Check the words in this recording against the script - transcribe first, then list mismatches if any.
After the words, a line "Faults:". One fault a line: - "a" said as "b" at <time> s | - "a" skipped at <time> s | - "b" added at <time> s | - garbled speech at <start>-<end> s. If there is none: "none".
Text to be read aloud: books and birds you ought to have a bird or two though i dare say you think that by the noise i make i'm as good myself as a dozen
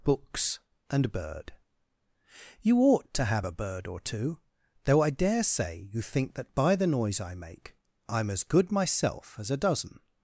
books and bird you ought to have a bird or two though i dare say you think that by the noise i make i'm as good myself as a dozen
Faults:
- "birds" said as "bird" at 1.1 s